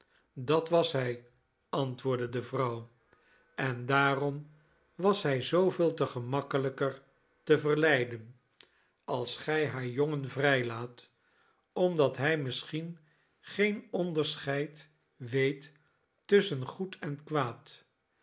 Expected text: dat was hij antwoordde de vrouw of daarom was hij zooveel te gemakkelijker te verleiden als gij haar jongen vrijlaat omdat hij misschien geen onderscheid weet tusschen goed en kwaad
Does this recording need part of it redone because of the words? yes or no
yes